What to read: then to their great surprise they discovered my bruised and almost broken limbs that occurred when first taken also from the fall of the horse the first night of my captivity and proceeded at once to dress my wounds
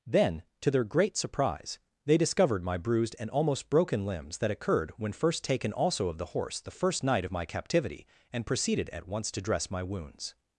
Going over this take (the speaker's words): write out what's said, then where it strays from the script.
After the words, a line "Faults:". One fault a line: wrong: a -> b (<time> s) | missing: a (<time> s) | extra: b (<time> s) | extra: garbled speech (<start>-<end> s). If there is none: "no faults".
then to their great surprise they discovered my bruised and almost broken limbs that occurred when first taken also of the horse the first night of my captivity and proceeded at once to dress my wounds
Faults:
missing: from the fall (6.1 s)